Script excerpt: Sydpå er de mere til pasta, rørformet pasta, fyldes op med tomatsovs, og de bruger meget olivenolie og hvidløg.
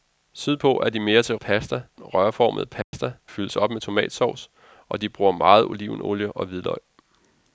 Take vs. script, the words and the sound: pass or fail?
fail